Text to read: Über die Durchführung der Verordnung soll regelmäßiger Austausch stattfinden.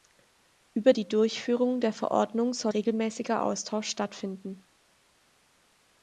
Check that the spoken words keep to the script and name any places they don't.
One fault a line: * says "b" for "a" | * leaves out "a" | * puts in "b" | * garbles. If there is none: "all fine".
all fine